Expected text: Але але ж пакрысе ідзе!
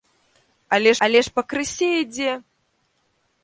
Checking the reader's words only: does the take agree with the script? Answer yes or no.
yes